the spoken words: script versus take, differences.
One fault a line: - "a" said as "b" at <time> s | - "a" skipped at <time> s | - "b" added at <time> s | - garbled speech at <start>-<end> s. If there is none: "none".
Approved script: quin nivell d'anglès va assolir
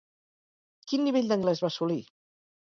none